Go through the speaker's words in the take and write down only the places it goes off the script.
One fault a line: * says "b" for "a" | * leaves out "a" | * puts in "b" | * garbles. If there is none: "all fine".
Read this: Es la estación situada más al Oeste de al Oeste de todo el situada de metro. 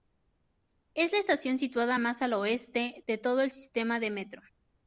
* leaves out "al Oeste de"
* says "sistema" for "situada"